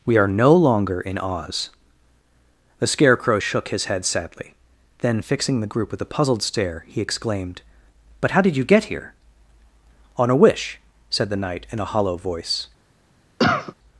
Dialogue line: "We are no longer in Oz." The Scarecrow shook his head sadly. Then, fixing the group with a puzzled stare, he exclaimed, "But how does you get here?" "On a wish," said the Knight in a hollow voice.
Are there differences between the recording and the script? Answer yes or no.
yes